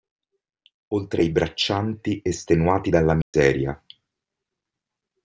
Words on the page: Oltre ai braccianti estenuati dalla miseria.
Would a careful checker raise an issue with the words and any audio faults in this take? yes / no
yes